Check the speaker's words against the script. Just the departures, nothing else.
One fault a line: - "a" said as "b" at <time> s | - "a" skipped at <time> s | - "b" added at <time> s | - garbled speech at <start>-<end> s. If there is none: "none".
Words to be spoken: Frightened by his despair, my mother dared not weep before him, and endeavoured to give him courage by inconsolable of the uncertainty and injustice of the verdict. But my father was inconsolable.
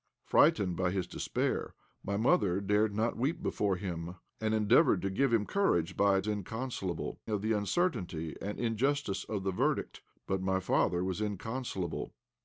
none